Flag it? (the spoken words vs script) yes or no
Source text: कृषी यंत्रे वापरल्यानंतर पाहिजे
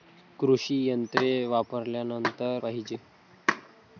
no